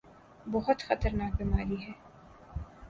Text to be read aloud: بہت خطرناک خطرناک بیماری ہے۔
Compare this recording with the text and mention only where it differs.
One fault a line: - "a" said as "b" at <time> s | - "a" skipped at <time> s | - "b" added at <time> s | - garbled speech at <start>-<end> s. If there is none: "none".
- "خطرناک" skipped at 1.3 s